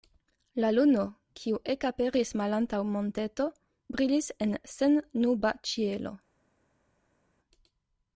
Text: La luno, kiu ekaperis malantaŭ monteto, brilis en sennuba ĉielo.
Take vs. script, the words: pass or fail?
pass